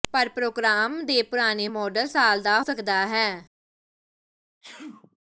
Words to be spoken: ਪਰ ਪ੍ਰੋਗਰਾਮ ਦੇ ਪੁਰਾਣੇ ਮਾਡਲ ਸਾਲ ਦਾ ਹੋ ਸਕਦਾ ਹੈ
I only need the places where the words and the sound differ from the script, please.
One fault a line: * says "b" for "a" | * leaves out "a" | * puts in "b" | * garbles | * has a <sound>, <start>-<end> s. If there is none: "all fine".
* leaves out "ਹੋ"
* has a sneeze, 4.6-5.2 s